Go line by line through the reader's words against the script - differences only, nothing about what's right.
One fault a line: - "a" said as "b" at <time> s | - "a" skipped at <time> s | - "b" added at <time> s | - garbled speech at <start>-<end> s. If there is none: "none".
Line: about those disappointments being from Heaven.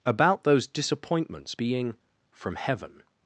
none